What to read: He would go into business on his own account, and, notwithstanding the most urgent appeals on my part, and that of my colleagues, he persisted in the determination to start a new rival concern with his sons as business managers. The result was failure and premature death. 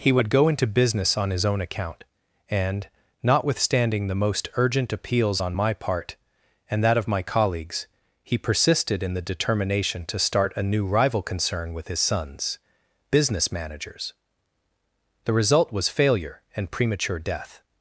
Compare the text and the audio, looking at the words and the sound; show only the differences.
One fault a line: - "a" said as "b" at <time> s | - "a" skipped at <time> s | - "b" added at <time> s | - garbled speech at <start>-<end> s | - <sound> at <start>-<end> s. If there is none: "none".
- "as" skipped at 12.6 s